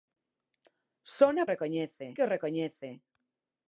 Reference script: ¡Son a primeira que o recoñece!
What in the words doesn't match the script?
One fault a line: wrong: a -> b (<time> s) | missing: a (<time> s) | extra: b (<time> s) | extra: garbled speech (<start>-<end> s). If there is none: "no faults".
wrong: primeira -> recoñece (1.5 s)